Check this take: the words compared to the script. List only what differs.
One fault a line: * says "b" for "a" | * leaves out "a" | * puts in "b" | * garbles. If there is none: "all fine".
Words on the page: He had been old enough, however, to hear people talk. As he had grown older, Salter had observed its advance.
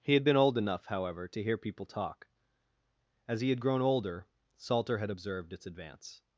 all fine